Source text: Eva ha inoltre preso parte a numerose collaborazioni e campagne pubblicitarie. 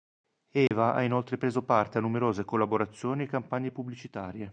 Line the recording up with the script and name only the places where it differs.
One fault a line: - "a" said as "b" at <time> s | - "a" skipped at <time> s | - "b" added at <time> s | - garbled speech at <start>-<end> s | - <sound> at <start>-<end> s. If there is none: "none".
- dropout at 0.7-0.7 s